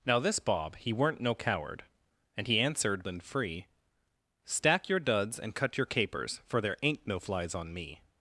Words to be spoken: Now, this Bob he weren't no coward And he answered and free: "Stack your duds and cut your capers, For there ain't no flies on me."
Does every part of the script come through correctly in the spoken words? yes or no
yes